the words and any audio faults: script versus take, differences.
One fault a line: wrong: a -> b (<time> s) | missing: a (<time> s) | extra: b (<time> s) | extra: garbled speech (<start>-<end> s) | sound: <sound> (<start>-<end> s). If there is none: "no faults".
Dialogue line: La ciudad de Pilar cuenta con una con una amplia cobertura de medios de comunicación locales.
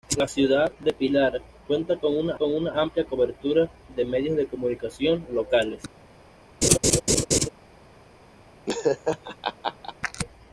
sound: laugh (6.6-7.5 s)
sound: laugh (8.7-9.9 s)